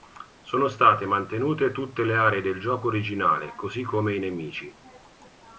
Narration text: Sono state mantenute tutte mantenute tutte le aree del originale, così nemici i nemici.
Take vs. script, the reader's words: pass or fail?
fail